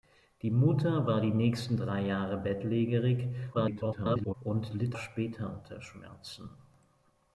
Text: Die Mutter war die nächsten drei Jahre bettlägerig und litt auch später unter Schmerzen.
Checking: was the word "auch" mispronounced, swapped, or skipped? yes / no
yes